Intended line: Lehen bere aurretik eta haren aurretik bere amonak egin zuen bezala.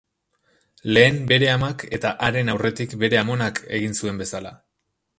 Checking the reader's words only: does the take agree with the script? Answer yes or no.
no